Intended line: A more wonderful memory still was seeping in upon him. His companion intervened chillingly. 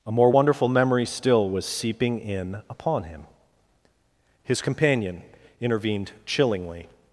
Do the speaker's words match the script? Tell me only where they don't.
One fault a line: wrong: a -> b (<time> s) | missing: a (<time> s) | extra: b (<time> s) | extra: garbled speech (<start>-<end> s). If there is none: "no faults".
no faults